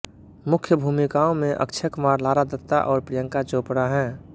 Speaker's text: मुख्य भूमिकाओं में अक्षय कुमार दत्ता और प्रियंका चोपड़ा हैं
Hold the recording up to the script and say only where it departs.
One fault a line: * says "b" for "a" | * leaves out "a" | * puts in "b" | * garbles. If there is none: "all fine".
* puts in "लारा"